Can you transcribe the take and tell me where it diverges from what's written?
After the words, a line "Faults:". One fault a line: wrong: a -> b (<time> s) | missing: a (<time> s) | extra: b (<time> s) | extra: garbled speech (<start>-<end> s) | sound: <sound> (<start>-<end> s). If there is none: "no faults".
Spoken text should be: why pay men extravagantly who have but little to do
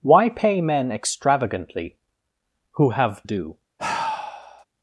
why pay men extravagantly who have do
Faults:
missing: but little to (3.2 s)
sound: sigh (3.8-4.6 s)